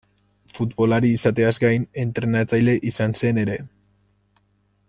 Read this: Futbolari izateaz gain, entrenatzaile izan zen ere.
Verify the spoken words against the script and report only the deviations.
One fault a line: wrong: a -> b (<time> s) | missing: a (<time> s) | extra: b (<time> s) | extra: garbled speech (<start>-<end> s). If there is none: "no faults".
no faults